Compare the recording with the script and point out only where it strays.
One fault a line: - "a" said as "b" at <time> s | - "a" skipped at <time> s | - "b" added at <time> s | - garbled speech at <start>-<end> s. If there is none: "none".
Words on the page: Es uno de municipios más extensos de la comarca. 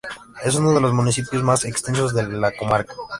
- "los" added at 0.8 s